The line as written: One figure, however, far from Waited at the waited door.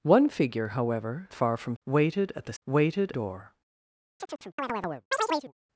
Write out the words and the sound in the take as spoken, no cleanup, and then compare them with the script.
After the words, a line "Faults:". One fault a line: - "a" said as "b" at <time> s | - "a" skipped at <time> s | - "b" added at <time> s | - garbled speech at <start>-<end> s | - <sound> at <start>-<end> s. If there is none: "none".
One figure, however, far from Waited at the waited door.
Faults:
- chirp at 4.2-5.5 s